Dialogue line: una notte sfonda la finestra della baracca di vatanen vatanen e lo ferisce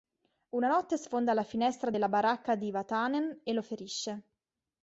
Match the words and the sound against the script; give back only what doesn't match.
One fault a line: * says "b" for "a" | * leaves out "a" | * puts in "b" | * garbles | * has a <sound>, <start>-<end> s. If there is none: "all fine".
* leaves out "vatanen"